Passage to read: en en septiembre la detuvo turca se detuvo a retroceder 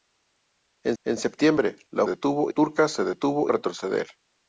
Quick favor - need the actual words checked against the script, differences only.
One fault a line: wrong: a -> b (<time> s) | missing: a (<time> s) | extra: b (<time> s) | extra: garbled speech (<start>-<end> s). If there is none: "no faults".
no faults